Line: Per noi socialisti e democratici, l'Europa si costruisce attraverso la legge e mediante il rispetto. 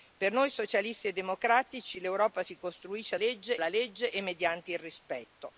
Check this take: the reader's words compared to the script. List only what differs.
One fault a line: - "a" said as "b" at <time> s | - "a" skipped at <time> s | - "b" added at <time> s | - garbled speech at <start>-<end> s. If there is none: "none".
- "attraverso" said as "legge" at 3.1 s